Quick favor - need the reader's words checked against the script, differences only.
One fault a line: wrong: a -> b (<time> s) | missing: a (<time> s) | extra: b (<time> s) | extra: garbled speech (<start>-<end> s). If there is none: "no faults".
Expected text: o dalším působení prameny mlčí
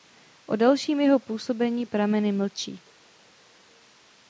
extra: jeho (1.0 s)